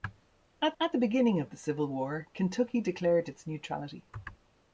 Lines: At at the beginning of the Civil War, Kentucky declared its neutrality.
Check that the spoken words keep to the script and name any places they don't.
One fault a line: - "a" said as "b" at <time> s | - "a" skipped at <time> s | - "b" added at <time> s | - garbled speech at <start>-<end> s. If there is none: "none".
none